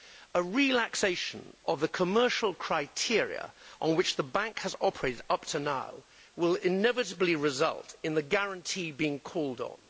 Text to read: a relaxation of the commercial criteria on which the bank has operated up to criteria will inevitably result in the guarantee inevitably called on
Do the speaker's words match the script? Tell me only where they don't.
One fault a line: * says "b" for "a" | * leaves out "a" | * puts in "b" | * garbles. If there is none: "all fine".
* says "now" for "criteria"
* says "being" for "inevitably"